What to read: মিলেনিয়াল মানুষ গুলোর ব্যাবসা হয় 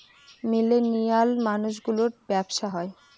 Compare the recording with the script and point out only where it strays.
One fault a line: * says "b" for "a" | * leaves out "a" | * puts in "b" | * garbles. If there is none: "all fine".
all fine